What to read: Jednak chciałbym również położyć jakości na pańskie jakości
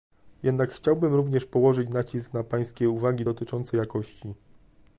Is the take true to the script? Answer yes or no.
no